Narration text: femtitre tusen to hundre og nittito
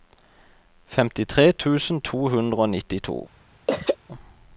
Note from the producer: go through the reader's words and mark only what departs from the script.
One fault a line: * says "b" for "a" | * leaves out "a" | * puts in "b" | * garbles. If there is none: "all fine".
all fine